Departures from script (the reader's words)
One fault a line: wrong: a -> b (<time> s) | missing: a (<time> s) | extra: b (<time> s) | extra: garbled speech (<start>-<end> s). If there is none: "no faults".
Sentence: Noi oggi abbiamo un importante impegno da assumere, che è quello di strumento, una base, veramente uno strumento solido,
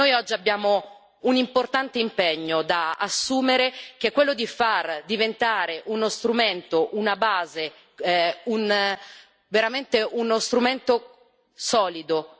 extra: far diventare uno (4.5 s)